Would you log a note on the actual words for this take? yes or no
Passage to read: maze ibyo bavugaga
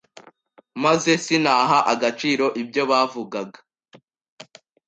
yes